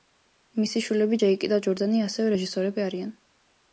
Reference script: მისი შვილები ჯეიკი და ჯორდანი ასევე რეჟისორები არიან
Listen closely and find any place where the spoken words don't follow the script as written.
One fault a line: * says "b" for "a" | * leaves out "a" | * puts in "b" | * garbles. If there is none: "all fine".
all fine